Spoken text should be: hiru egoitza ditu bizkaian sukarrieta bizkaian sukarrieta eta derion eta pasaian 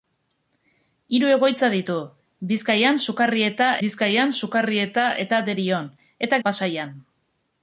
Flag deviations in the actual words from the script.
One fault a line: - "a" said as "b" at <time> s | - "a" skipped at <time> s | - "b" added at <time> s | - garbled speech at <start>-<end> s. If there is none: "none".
none